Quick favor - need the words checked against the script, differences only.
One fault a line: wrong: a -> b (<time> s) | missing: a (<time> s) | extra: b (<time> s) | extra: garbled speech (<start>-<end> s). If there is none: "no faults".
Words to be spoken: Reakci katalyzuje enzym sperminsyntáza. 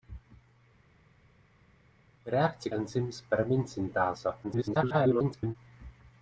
missing: katalyzuje (2.7 s)
extra: garbled speech (4.4-5.6 s)